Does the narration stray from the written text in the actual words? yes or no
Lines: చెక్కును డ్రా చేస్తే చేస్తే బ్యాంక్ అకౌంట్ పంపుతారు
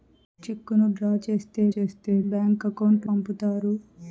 no